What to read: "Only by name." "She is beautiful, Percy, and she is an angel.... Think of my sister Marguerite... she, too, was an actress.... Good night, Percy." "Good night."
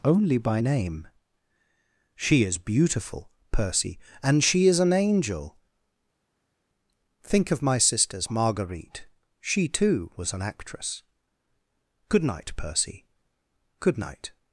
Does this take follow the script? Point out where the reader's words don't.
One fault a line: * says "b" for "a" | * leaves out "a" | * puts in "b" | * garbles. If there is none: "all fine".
* says "sisters" for "sister"